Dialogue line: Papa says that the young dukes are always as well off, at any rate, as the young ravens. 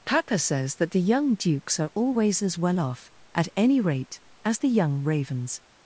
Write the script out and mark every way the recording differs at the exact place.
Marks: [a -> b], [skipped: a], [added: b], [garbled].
Papa says that the young dukes are always as well off, at any rate, as the young ravens.